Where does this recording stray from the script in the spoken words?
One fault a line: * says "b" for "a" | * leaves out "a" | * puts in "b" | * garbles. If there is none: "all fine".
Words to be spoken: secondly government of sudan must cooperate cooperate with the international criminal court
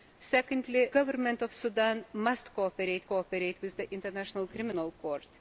all fine